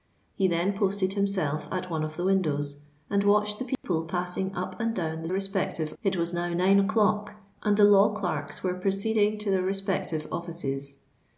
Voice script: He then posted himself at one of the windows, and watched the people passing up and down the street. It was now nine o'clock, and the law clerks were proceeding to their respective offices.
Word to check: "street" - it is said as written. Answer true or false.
false